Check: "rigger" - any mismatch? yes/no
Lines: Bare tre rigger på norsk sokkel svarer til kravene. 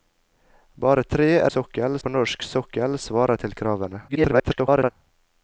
yes